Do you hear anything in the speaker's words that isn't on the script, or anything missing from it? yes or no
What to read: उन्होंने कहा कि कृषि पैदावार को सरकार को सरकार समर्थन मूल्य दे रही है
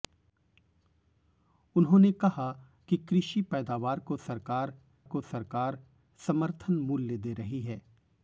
no